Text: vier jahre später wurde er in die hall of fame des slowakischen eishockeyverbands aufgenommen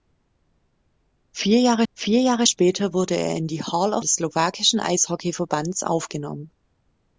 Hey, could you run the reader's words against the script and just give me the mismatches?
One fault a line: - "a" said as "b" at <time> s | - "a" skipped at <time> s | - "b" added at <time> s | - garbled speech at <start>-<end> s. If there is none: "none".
- "vier jahre" added at 1.9 s
- "fame" skipped at 4.0 s